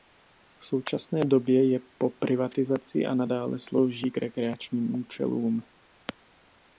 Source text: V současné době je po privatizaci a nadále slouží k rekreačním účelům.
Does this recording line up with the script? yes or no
yes